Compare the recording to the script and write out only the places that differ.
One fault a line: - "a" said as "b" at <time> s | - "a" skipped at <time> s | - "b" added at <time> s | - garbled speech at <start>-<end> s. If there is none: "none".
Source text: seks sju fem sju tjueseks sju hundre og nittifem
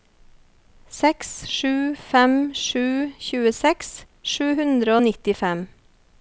none